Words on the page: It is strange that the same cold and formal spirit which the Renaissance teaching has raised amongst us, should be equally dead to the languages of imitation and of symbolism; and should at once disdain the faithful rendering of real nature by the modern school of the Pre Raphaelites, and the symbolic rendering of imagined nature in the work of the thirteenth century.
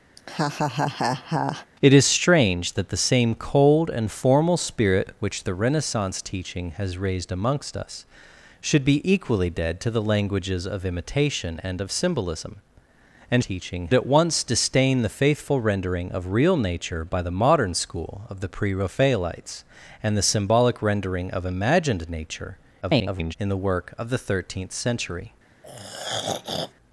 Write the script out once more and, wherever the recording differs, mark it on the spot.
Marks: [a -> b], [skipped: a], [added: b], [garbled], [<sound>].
[laugh] It is strange that the same cold and formal spirit which the Renaissance teaching has raised amongst us, should be equally dead to the languages of imitation and of symbolism; and [should -> teaching] at once disdain the faithful rendering of real nature by the modern school of the Pre Raphaelites, and the symbolic rendering of imagined nature [garbled] in the work of the thirteenth century. [throat clearing]